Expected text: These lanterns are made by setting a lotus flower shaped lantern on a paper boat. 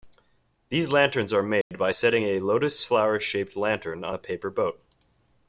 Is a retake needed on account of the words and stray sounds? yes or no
yes